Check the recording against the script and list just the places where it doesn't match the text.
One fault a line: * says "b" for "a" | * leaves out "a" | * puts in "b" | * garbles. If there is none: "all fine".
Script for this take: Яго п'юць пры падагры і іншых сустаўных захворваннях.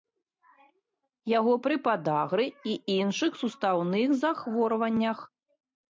* leaves out "п'юць"